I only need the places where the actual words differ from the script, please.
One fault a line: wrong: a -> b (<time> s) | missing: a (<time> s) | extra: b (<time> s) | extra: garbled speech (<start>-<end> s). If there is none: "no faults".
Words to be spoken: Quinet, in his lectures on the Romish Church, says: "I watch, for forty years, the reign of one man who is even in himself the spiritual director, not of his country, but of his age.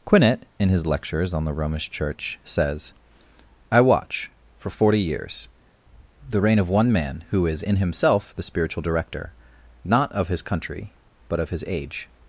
missing: even (7.6 s)